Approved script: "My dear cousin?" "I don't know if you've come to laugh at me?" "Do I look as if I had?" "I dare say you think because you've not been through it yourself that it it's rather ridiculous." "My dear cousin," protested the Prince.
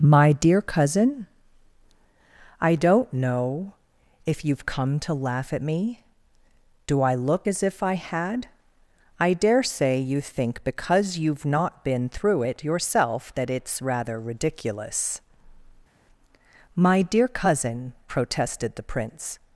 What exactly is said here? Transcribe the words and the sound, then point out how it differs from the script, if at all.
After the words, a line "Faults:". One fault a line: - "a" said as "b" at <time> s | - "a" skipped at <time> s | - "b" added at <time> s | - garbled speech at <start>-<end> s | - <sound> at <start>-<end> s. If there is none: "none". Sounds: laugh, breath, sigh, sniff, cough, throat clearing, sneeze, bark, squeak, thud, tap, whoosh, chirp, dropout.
"My dear cousin?" "I don't know if you've come to laugh at me?" "Do I look as if I had?" "I dare say you think because you've not been through it yourself that it's rather ridiculous." "My dear cousin," protested the Prince.
Faults:
- "it" skipped at 13.5 s